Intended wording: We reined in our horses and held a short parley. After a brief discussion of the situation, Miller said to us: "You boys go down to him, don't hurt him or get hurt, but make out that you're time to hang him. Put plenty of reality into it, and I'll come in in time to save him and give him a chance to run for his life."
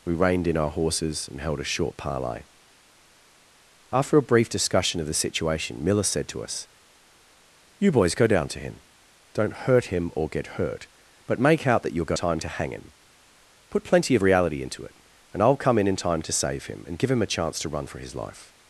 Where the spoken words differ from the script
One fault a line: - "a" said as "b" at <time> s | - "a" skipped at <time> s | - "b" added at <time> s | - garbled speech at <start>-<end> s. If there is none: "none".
none